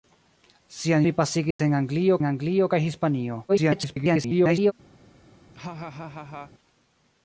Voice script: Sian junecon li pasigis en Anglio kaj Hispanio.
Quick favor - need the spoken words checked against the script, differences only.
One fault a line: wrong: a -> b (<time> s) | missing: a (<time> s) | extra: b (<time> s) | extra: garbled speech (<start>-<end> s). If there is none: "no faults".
missing: junecon (1.1 s)
extra: en Anglio (2.2 s)
extra: garbled speech (3.5-4.7 s)